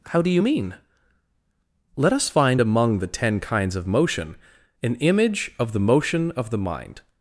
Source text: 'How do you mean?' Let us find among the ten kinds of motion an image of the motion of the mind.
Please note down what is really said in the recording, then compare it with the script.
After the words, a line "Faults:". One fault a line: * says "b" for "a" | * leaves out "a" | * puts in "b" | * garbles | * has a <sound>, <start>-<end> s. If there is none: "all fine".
'How do you mean?' Let us find among the ten kinds of motion an image of the motion of the mind.
Faults:
all fine